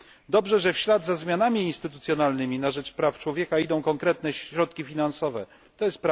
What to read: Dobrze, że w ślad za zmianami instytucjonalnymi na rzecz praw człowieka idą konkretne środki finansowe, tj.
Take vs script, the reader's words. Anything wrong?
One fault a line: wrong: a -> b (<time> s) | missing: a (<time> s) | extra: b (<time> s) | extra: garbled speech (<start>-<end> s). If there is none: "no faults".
no faults